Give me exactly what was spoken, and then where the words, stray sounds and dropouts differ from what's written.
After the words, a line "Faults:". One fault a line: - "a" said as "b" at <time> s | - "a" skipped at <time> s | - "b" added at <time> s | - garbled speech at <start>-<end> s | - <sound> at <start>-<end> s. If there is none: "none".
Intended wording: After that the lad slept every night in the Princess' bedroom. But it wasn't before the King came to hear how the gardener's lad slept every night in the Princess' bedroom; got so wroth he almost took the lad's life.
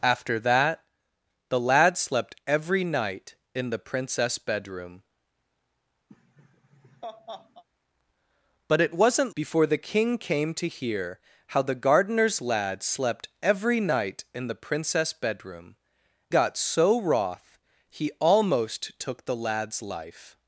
After that the lad slept every night in the Princess' bedroom. But it wasn't before the King came to hear how the gardener's lad slept every night in the Princess' bedroom; got so wroth he almost took the lad's life.
Faults:
- laugh at 6.1-7.6 s